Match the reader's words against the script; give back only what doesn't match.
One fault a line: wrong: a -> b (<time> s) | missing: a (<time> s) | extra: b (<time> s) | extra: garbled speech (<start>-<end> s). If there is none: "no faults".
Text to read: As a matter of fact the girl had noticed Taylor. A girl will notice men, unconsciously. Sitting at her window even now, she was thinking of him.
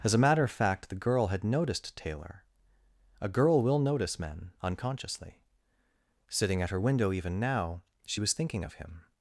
no faults